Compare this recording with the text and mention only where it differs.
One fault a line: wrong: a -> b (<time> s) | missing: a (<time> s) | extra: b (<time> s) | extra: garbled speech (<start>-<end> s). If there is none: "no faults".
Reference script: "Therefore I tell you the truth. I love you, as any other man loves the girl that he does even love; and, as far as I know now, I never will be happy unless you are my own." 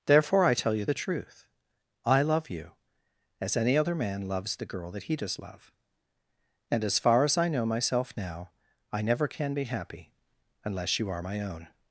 missing: even (5.4 s)
extra: myself (7.6 s)
wrong: will -> can (9.3 s)